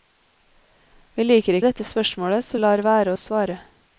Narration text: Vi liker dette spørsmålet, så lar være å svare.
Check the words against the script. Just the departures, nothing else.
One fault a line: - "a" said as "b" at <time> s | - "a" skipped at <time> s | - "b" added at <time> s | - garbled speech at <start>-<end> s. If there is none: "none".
none